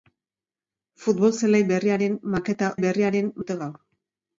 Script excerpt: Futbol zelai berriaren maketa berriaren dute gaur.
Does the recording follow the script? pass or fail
pass